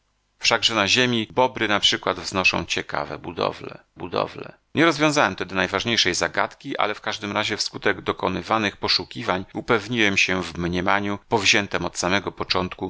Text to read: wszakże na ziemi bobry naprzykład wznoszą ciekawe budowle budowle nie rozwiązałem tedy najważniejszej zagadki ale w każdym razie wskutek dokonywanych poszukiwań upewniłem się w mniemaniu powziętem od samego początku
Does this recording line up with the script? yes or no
yes